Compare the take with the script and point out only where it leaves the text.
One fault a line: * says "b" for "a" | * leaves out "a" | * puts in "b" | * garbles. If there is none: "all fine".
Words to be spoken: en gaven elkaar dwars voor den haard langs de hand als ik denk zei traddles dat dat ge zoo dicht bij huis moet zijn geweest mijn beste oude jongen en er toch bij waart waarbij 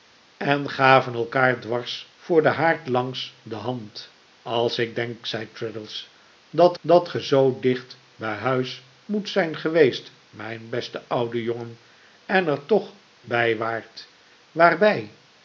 all fine